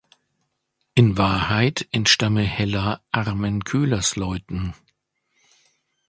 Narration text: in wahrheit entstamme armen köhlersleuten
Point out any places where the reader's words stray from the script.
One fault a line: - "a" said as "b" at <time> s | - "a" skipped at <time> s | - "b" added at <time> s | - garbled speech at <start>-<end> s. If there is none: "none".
- "hella" added at 2.4 s